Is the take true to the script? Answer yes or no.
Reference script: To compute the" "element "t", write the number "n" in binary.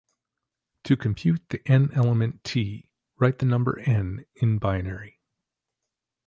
no